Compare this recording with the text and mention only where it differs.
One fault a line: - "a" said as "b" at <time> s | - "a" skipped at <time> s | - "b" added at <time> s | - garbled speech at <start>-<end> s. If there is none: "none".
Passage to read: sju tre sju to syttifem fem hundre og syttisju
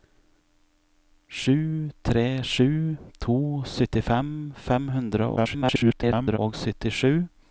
- garbled speech at 5.4-6.4 s